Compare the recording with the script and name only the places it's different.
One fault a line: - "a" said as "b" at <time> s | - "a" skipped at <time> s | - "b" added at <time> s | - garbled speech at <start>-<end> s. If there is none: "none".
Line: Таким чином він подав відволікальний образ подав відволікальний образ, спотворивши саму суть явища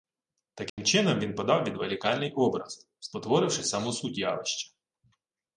- "подав відволікальний образ" skipped at 2.9 s